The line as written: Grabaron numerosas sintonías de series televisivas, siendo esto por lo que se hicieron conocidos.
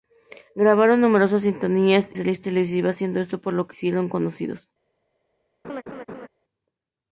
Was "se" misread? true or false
true